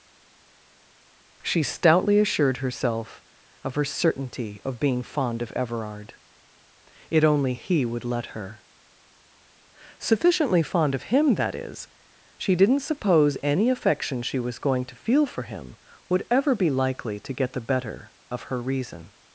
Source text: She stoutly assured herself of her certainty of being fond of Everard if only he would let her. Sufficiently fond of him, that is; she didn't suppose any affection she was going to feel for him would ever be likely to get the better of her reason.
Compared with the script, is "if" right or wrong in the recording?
wrong